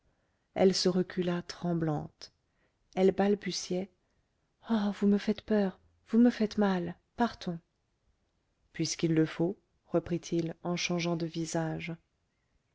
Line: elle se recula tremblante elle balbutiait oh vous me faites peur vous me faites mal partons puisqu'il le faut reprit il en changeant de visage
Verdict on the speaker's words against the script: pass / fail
pass